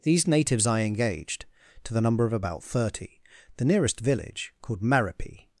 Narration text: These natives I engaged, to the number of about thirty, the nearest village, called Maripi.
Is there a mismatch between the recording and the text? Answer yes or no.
no